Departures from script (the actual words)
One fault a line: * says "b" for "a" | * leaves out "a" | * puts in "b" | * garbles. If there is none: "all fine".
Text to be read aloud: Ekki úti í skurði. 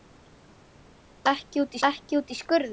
* puts in "ekki úti"